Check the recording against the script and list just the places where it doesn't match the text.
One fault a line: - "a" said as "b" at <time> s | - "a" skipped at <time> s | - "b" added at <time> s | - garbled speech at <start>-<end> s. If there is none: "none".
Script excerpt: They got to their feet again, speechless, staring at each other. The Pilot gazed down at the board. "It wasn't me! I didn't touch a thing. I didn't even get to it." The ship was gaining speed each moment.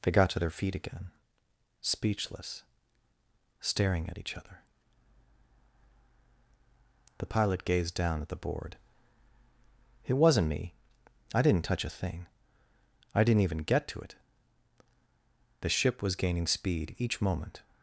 none